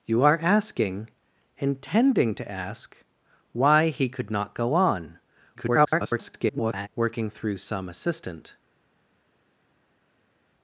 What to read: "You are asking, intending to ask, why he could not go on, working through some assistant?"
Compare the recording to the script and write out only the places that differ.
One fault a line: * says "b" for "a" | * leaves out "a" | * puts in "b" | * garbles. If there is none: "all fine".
* garbles